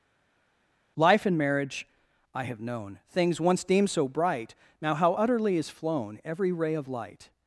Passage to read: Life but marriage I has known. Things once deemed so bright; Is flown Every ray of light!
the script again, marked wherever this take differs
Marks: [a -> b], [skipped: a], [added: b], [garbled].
Life [but -> and] marriage I [has -> have] known. Things once deemed so bright; [added: Now how utterly] Is flown Every ray of light!